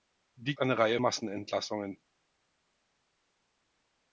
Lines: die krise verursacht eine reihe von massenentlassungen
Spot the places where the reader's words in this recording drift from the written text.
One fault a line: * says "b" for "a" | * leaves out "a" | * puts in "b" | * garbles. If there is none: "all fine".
* leaves out "krise verursacht"
* leaves out "von"